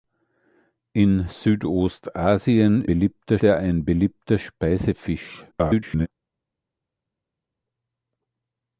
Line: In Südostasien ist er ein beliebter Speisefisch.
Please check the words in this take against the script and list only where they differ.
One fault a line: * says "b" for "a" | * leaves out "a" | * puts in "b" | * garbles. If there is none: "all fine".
* says "beliebter" for "ist"
* garbles